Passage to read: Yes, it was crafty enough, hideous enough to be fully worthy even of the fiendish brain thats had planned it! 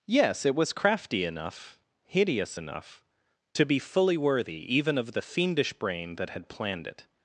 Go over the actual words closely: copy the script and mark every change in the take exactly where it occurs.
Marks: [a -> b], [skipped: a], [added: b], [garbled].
Yes, it was crafty enough, hideous enough to be fully worthy even of the fiendish brain [thats -> that] had planned it!